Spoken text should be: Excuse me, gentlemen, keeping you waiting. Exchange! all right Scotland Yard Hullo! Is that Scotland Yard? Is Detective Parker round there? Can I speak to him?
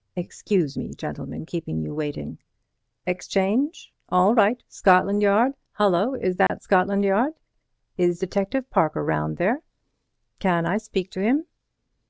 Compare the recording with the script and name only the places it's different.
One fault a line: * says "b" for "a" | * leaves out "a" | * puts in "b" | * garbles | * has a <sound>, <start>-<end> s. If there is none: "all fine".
* has a dropout, 6.5-6.5 s